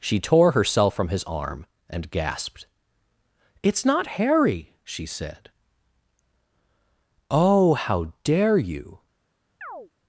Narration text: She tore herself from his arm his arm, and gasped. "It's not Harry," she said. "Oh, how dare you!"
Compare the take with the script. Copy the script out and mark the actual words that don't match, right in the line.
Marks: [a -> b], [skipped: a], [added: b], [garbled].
She tore herself from his arm [skipped: his arm,] and gasped. "It's not Harry," she said. "Oh, how dare you!"